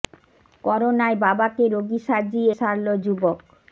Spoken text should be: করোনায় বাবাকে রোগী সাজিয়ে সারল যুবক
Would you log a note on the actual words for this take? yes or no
no